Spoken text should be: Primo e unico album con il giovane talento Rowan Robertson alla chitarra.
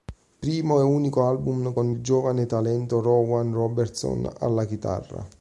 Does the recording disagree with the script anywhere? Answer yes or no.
no